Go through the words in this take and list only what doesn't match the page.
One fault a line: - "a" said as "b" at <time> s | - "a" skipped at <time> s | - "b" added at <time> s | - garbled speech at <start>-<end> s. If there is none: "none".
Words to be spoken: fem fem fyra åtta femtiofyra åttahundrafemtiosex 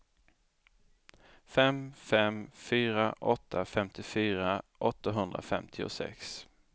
none